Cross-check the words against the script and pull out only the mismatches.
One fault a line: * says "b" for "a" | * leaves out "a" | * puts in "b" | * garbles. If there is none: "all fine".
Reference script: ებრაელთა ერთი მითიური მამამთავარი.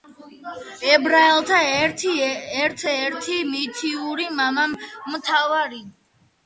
* puts in "ერთ"